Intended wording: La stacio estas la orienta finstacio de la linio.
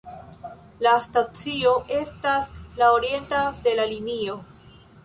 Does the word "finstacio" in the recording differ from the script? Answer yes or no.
yes